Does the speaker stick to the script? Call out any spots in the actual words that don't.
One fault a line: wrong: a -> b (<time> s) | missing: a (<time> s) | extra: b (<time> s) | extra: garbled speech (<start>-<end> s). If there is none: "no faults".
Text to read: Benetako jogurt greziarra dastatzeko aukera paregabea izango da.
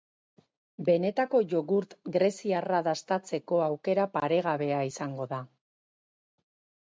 no faults